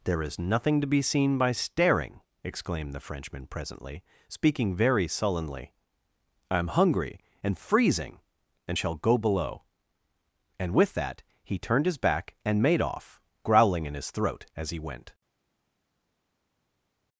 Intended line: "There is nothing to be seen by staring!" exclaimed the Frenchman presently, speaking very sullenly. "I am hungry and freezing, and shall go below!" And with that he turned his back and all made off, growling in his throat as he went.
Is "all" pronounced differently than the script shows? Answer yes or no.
yes